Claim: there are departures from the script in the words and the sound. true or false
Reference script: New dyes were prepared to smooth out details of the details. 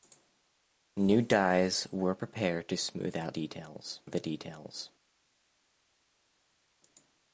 false